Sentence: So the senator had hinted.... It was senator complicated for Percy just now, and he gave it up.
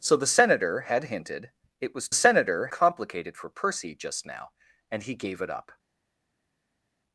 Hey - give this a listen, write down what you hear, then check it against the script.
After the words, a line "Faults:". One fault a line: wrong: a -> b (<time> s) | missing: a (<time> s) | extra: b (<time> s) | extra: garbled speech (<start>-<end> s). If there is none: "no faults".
So the senator had hinted.... It was senator complicated for Percy just now, and he gave it up.
Faults:
no faults